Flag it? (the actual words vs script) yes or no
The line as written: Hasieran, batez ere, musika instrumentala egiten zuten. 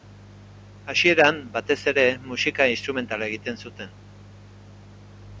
no